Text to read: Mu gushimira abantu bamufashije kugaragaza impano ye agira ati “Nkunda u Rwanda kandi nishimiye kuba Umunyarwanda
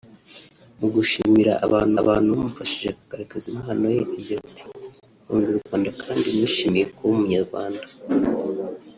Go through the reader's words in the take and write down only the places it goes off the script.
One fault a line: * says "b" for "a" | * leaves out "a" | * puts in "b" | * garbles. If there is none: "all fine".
* puts in "abantu"